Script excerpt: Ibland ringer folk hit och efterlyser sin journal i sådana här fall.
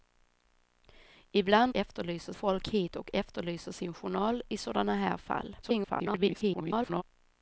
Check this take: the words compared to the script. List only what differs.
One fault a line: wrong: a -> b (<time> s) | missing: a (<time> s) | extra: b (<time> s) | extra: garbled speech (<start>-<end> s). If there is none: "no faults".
wrong: ringer -> efterlyser (1.7 s)
extra: garbled speech (5.6-7.0 s)